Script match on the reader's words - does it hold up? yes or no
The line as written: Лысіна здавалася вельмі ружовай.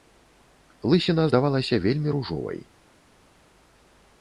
yes